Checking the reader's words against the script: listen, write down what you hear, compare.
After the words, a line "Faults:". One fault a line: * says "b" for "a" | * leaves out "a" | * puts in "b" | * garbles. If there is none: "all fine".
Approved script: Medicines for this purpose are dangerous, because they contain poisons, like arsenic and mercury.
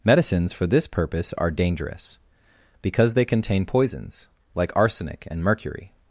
Medicines for this purpose are dangerous, because they contain poisons, like arsenic and mercury.
Faults:
all fine